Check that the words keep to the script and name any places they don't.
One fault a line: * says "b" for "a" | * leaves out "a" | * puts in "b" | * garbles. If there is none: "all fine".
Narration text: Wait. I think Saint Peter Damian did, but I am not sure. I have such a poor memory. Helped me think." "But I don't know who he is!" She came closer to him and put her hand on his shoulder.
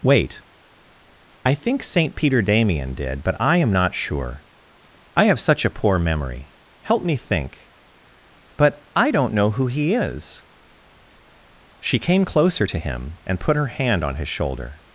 * says "Help" for "Helped"